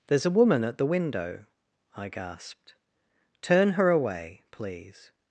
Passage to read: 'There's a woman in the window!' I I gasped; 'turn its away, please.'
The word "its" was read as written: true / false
false